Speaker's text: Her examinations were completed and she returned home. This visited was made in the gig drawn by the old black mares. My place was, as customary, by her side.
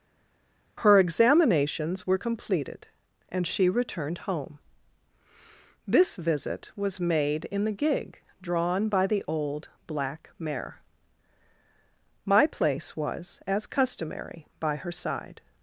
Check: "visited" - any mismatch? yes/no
yes